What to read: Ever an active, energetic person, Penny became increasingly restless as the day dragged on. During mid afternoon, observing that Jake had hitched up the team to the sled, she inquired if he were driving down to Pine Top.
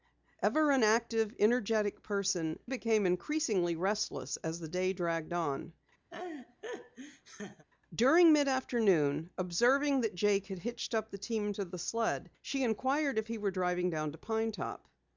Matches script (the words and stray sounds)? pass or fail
fail